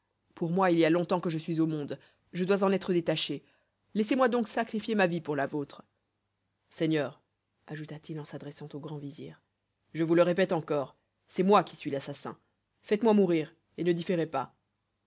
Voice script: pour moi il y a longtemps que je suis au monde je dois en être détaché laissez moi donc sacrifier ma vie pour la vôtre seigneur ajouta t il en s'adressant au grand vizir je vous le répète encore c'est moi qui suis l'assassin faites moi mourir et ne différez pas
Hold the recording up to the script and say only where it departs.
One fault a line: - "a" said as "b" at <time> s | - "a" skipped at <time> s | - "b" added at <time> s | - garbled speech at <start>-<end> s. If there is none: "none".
none